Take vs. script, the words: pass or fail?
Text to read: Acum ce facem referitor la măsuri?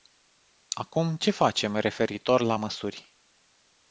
pass